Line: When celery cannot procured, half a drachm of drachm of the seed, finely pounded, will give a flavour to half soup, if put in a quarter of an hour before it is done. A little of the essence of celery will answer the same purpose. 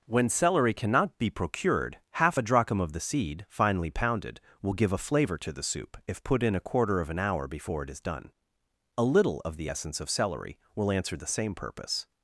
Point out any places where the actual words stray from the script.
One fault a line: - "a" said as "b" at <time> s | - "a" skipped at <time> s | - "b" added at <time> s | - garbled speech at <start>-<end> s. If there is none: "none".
- "be" added at 1.2 s
- "drachm of" skipped at 2.9 s
- "half" said as "the" at 5.5 s